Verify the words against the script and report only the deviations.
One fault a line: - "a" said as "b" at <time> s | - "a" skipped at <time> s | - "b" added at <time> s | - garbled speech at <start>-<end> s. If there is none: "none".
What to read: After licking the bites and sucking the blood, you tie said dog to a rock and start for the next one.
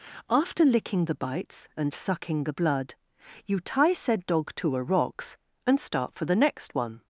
- "rock" said as "rocks" at 4.8 s